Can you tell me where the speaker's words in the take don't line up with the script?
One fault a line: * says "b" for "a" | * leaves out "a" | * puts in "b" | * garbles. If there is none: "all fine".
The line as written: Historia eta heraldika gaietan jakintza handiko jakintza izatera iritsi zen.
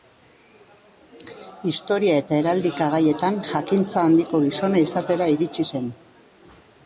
* says "gizona" for "jakintza"